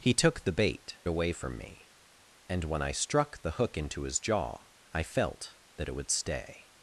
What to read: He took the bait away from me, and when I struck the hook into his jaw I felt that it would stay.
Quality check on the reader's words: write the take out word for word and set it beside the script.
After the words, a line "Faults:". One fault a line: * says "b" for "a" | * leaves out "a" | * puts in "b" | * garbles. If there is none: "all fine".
He took the bait away from me, and when I struck the hook into his jaw I felt that it would stay.
Faults:
all fine